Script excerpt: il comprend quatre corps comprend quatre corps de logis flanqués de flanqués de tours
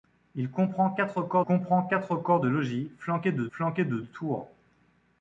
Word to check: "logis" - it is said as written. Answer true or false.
true